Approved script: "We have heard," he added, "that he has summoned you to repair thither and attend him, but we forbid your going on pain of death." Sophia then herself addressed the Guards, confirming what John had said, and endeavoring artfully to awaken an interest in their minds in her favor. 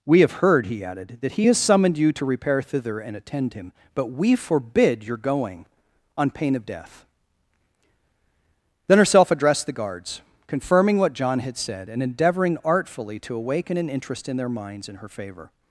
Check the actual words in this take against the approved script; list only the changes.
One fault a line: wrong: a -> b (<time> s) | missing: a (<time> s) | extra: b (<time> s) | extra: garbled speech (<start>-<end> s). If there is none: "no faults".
missing: Sophia (7.1 s)